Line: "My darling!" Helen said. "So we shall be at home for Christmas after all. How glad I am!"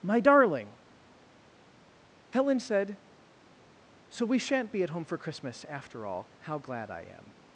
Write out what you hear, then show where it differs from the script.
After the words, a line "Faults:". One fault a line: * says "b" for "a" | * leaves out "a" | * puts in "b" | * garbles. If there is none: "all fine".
"My darling!" Helen said. "So we shan't be at home for Christmas after all. How glad I am!"
Faults:
* says "shan't" for "shall"